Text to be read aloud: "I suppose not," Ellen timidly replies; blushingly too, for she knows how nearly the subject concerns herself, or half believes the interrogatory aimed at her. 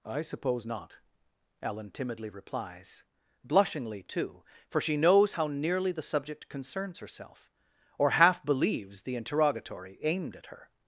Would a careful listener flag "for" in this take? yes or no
no